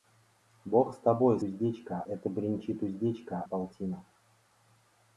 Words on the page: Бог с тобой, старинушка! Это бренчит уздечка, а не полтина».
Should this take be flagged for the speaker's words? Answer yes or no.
yes